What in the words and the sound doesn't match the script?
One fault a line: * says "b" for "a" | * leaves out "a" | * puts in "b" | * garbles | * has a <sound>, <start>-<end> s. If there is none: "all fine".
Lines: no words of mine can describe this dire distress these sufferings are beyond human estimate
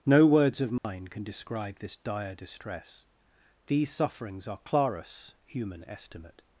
* has a dropout, 0.8-0.8 s
* says "clarus" for "beyond"